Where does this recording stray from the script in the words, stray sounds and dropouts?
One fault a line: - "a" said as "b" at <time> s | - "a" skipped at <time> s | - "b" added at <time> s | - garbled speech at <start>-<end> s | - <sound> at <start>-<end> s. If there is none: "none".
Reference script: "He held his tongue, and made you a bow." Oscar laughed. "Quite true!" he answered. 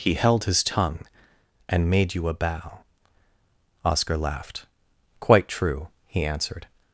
none